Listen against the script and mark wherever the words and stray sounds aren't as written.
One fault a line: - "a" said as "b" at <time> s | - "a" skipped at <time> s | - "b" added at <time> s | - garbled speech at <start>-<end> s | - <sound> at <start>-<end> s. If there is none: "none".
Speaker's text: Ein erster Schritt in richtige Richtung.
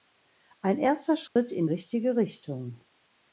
- dropout at 1.3-1.4 s